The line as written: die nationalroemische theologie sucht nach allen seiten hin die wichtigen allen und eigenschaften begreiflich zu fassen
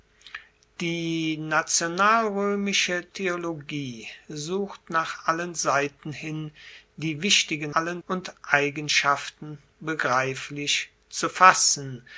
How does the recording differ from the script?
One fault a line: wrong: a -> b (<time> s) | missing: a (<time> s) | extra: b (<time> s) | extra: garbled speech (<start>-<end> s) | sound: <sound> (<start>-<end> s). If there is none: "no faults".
no faults